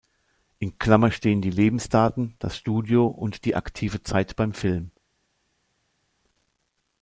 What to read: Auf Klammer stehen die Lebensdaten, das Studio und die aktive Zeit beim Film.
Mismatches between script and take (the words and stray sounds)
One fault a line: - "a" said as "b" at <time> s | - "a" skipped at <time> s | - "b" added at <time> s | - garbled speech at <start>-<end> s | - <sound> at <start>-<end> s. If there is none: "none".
- "Auf" said as "In" at 0.6 s